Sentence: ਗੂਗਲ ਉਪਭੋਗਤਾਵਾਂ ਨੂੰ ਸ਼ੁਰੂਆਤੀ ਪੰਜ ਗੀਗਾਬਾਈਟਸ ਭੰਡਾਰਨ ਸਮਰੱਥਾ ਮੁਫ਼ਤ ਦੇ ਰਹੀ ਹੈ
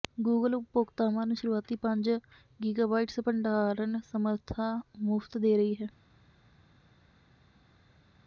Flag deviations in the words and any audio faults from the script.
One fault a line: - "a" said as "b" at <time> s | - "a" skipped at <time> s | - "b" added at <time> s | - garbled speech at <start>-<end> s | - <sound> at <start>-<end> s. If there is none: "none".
none